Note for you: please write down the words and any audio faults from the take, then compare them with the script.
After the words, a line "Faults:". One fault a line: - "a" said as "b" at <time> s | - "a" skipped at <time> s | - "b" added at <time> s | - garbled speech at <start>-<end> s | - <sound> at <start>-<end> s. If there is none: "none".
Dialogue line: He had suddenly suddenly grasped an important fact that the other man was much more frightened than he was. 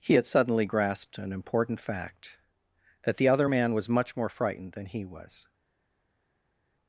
He had suddenly grasped an important fact that the other man was much more frightened than he was.
Faults:
- "suddenly" skipped at 0.7 s